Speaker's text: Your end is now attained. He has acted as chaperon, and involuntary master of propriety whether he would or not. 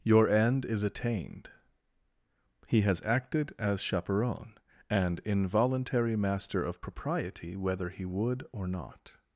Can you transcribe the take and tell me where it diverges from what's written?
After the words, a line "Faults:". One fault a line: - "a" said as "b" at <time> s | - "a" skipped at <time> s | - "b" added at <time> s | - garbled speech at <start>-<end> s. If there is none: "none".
Your end is attained. He has acted as chaperon, and involuntary master of propriety whether he would or not.
Faults:
- "now" skipped at 0.8 s